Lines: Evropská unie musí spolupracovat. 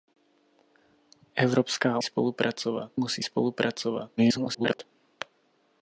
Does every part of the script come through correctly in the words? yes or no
no